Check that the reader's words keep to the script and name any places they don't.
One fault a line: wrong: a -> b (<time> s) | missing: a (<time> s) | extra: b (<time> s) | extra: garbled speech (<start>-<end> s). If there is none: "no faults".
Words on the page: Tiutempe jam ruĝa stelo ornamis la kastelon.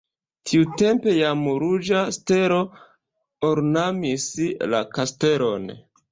no faults